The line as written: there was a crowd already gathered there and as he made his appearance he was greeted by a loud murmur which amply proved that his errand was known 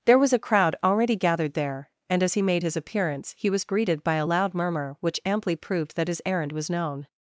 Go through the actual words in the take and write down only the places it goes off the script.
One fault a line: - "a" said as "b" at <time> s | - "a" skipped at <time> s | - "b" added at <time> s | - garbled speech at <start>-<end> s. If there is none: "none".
none